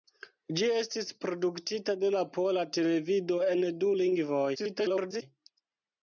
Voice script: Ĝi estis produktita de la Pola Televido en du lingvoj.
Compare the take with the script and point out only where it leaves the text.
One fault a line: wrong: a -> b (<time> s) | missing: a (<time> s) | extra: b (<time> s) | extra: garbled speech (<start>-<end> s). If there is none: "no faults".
extra: garbled speech (4.5-5.2 s)